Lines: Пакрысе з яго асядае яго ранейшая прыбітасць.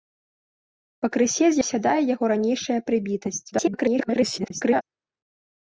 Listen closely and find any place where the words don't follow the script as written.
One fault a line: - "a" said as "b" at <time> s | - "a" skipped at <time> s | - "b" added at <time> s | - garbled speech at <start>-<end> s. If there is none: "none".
- "яго" skipped at 1.6 s
- garbled speech at 3.5-4.8 s